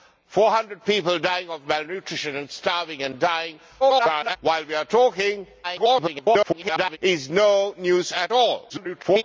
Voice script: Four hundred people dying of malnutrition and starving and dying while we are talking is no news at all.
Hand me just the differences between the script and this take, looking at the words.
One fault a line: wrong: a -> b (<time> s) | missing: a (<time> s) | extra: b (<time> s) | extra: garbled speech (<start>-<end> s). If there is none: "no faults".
extra: garbled speech (3.8-4.4 s)
extra: garbled speech (5.6-7.0 s)
extra: garbled speech (8.7-9.2 s)